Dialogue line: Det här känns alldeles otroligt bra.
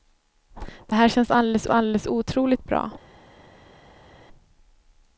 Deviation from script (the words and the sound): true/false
true